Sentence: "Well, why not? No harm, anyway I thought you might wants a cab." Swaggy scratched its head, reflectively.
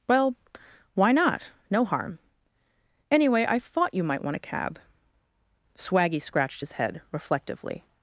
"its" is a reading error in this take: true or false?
true